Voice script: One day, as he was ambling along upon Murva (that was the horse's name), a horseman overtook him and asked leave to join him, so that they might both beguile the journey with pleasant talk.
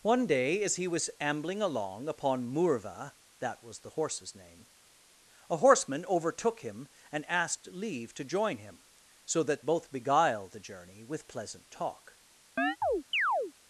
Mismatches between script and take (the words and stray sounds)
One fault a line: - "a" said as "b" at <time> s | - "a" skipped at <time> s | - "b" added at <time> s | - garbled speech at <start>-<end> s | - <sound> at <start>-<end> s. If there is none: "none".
- "they might" skipped at 9.6 s
- chirp at 12.6-13.5 s